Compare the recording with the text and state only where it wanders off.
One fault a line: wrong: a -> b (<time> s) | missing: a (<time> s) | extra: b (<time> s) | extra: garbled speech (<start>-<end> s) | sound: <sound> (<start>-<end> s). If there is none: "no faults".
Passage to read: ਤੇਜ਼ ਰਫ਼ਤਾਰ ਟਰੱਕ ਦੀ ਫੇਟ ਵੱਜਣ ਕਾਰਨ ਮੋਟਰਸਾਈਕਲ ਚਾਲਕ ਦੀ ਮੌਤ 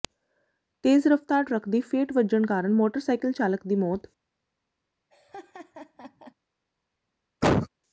sound: laugh (5.1-6.3 s)
sound: cough (7.4-7.7 s)